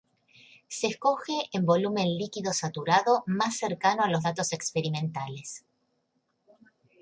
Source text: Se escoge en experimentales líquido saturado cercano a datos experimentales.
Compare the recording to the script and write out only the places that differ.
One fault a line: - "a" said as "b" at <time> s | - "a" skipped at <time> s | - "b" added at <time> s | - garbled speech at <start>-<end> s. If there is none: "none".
- "experimentales" said as "volumen" at 1.6 s
- "más" added at 3.3 s
- "los" added at 4.1 s